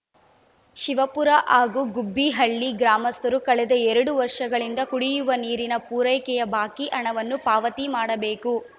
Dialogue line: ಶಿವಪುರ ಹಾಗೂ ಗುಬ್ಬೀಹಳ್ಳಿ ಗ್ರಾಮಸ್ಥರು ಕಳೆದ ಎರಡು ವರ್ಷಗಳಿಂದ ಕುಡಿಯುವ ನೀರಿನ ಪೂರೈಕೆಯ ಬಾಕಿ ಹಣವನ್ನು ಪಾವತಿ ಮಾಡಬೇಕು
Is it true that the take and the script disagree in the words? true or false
false